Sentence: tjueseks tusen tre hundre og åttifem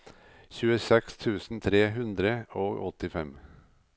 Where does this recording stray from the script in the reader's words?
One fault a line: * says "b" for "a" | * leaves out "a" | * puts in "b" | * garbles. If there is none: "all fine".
all fine